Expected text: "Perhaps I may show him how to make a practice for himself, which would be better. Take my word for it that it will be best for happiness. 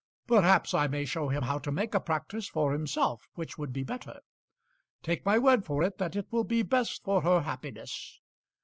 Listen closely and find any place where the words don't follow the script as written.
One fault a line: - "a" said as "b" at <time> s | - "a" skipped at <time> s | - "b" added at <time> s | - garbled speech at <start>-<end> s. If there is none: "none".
- "her" added at 7.2 s